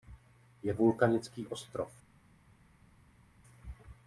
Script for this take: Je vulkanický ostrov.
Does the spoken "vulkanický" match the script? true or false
true